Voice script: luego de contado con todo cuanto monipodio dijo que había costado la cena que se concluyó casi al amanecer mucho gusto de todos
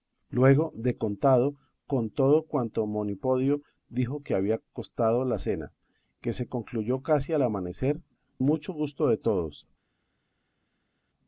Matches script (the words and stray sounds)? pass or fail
pass